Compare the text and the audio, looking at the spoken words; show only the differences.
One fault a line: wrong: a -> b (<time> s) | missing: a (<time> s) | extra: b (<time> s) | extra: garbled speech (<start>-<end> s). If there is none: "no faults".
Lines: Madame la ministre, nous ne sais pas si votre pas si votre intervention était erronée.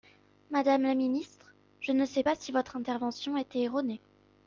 wrong: nous -> je (1.8 s)
missing: pas si votre (2.7 s)